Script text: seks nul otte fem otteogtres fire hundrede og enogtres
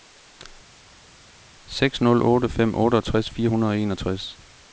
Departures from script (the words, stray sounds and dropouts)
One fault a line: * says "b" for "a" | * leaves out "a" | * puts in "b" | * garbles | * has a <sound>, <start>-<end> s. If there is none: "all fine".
all fine